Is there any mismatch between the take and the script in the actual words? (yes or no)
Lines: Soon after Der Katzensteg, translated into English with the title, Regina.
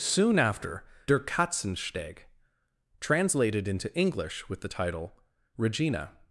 no